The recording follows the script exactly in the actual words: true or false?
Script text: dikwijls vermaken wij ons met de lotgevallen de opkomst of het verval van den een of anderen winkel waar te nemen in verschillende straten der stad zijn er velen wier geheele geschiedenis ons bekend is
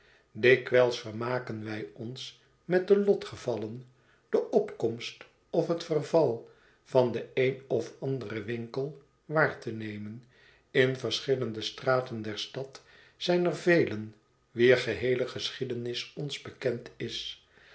true